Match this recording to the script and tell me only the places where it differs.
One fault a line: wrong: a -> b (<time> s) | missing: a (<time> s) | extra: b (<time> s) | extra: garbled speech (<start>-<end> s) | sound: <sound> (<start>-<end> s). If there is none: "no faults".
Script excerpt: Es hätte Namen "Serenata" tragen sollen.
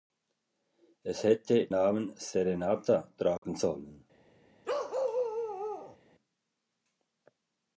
sound: dropout (3.4-3.4 s)
sound: bark (4.6-6.0 s)